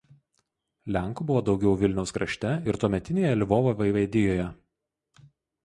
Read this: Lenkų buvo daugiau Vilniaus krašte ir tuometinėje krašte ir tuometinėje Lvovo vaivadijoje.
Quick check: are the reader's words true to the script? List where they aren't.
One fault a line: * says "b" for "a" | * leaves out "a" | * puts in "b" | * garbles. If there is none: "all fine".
* leaves out "krašte ir tuometinėje"